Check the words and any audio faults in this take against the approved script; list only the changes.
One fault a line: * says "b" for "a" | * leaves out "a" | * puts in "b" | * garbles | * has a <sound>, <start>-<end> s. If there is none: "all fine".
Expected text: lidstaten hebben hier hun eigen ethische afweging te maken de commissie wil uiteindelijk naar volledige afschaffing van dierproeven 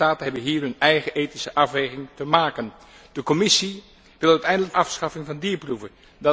* leaves out "naar volledige"